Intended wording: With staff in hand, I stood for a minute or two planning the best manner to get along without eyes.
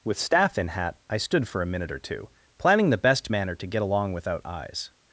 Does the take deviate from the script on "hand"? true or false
true